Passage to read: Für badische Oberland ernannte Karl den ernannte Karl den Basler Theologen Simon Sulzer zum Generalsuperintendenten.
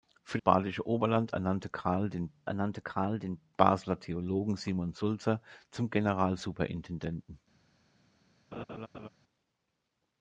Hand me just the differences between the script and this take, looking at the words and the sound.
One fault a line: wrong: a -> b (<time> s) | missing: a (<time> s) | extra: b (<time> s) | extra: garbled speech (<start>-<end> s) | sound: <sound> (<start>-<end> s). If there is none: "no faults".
sound: laugh (8.5-9.1 s)